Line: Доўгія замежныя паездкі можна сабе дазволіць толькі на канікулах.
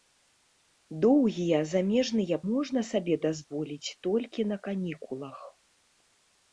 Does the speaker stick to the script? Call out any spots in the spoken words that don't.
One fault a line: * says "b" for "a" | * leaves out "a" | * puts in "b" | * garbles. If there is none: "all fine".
* leaves out "паездкі"